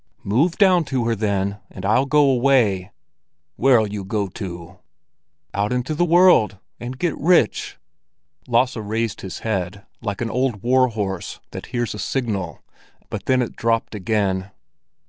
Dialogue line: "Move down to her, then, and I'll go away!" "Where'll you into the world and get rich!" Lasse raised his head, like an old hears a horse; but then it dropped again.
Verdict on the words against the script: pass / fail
fail